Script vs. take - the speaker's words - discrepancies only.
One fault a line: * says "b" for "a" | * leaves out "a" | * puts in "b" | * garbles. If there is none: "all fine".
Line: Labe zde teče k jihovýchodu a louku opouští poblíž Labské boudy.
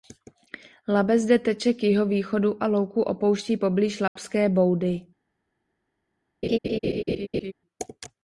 all fine